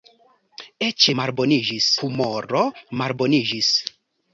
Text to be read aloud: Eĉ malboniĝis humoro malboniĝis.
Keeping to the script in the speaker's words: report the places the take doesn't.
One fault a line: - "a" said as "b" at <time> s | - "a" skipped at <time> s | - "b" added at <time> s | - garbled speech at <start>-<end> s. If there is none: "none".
none